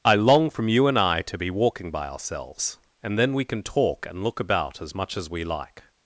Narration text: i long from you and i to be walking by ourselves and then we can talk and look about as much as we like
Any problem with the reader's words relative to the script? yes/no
no